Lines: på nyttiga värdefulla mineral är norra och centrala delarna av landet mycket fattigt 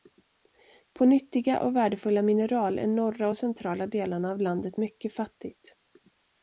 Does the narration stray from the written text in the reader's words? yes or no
yes